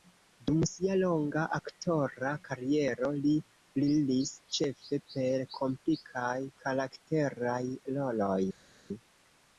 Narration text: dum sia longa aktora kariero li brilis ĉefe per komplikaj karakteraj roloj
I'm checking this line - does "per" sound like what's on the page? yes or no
yes